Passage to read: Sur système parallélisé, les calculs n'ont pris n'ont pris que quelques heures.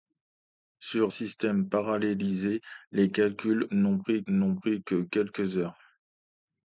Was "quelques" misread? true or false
false